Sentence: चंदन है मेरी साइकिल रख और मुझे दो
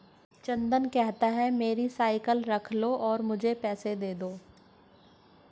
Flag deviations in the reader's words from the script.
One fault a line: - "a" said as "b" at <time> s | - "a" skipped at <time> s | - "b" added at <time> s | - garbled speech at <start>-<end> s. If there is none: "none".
- "कहता" added at 0.8 s
- "लो" added at 2.7 s
- "पैसे दे" added at 3.6 s